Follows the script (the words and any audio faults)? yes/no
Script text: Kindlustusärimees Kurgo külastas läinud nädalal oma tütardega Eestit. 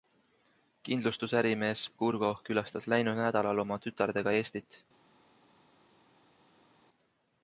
yes